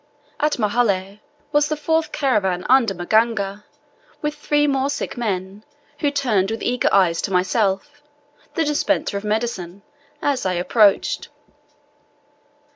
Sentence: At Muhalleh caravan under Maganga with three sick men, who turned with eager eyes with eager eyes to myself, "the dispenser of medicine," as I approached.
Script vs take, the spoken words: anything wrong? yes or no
yes